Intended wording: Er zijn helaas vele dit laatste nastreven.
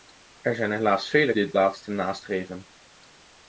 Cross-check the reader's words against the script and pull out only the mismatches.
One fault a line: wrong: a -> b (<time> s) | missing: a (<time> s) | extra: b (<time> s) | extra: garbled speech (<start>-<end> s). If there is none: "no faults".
no faults